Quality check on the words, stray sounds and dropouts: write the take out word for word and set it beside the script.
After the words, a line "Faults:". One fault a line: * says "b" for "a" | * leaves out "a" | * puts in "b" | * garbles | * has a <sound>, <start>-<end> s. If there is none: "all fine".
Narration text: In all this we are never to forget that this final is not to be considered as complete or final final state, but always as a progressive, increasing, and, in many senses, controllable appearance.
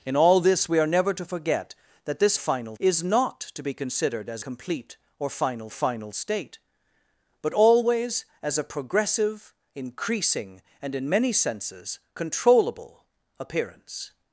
In all this we are never to forget that this final is not to be considered as complete or final final state, but always as a progressive, increasing, and, in many senses, controllable appearance.
Faults:
all fine